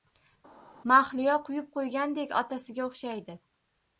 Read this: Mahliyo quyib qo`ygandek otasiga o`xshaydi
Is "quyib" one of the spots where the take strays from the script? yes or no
no